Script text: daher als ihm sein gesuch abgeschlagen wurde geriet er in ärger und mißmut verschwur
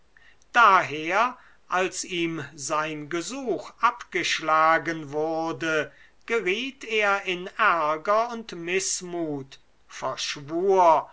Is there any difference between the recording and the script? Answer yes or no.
no